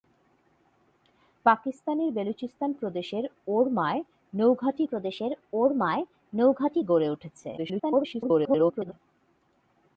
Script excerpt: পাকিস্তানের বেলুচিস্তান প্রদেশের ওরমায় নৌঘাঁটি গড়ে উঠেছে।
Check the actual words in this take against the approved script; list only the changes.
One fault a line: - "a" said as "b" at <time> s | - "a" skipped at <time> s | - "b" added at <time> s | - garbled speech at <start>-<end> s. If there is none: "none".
- "প্রদেশের ওরমায় নৌঘাঁটি" added at 4.8 s
- garbled speech at 7.6-8.9 s